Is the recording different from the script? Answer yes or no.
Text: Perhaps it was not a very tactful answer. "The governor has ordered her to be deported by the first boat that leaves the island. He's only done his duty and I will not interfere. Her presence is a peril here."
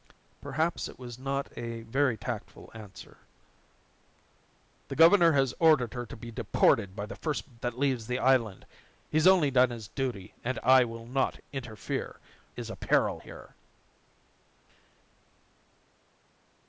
yes